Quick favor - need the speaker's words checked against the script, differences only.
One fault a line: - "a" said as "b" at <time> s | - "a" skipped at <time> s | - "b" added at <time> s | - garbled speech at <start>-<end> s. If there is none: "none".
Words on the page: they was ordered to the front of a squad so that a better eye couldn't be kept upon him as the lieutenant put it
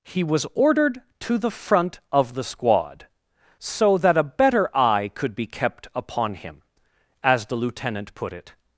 - "they" said as "he" at 0.0 s
- "a" said as "the" at 2.3 s
- "couldn't" said as "could" at 5.1 s